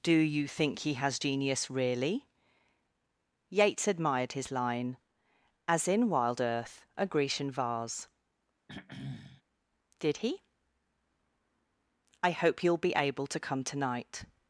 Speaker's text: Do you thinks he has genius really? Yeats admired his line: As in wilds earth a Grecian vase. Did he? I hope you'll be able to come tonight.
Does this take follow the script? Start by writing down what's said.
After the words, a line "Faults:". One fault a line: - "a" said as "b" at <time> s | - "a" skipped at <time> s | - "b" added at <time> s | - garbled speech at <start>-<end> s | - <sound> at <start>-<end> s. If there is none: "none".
Do you think he has genius really? Yeats admired his line: As in wild earth a Grecian vase. Did he? I hope you'll be able to come tonight.
Faults:
- "thinks" said as "think" at 0.5 s
- "wilds" said as "wild" at 6.1 s
- throat clearing at 8.7-9.4 s